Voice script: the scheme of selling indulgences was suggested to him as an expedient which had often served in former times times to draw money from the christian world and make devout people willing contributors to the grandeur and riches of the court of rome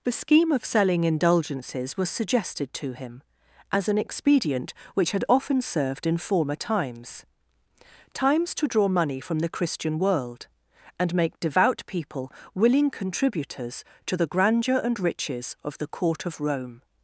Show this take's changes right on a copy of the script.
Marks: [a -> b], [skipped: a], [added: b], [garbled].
the scheme of selling indulgences was suggested to him as an expedient which had often served in former times times to draw money from the christian world and make devout people willing contributors to the grandeur and riches of the court of rome